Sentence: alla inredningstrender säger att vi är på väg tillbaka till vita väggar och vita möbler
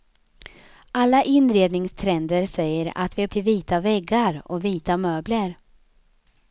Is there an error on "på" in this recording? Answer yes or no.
yes